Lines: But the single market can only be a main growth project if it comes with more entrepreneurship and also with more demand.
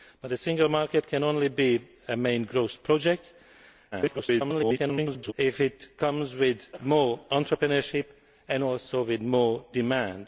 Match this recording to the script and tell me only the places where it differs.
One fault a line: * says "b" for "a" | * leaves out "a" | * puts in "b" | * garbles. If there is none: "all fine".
* garbles